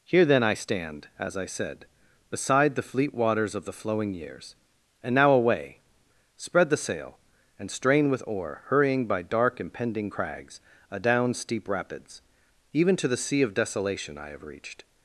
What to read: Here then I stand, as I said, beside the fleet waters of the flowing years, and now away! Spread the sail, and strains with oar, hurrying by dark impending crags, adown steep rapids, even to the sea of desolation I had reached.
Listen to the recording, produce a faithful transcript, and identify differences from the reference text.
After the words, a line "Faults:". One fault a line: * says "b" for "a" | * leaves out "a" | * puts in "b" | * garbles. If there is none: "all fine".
Here then I stand, as I said, beside the fleet waters of the flowing years, and now away! Spread the sail, and strain with oar, hurrying by dark impending crags, adown steep rapids, even to the sea of desolation I have reached.
Faults:
* says "strain" for "strains"
* says "have" for "had"